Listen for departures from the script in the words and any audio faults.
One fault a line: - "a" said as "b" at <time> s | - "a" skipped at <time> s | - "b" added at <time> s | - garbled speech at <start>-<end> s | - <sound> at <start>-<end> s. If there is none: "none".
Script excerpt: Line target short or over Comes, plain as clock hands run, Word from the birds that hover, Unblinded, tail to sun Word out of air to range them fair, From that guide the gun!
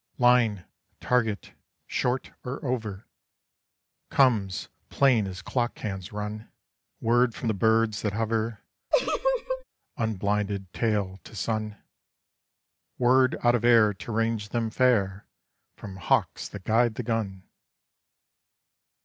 - laugh at 8.9-9.6 s
- "hawks" added at 15.9 s